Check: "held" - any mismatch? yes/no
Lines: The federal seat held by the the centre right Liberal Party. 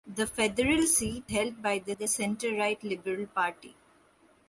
no